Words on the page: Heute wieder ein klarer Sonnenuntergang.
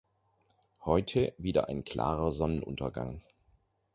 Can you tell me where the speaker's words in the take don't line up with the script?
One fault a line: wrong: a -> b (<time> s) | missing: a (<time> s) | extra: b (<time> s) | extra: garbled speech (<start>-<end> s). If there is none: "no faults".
no faults